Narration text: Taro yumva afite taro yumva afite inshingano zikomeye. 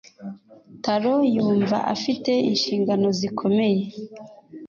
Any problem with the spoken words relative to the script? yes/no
yes